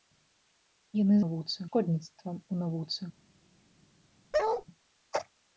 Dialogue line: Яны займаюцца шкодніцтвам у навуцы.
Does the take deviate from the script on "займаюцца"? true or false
true